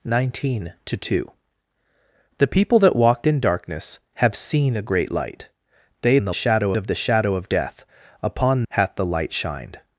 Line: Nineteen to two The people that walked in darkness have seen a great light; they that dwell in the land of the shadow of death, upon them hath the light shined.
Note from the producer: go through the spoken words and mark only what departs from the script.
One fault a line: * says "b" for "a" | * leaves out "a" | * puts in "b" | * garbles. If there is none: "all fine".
* leaves out "that dwell"
* says "shadow" for "land"
* leaves out "them"